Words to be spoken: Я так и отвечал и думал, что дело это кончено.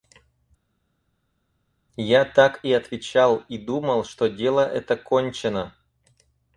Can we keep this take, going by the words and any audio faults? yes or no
yes